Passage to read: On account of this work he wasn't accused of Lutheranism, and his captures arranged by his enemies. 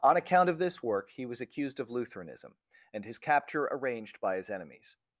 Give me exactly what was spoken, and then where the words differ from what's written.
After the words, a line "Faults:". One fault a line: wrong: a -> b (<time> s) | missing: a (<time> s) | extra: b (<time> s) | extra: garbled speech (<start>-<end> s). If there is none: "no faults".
On account of this work he was accused of Lutheranism, and his capture arranged by his enemies.
Faults:
wrong: wasn't -> was (1.3 s)
wrong: captures -> capture (3.2 s)